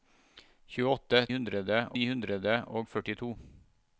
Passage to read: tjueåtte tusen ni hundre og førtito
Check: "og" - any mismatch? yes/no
no